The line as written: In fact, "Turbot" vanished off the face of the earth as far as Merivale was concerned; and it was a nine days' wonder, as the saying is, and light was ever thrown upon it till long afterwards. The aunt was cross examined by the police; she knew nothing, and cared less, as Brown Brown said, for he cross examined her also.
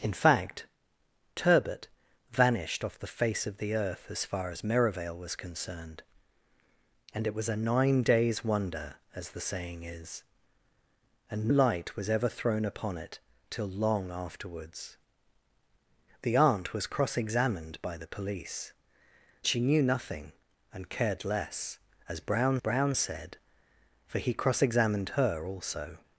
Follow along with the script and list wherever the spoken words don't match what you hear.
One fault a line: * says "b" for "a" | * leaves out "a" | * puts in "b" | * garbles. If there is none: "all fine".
all fine